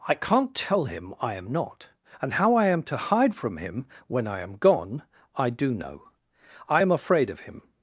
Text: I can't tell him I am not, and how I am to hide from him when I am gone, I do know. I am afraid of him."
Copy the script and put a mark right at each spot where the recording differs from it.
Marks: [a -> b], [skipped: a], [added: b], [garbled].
I can't tell him I am not, and how I am to hide from him when I am gone, I do know. I am afraid of him."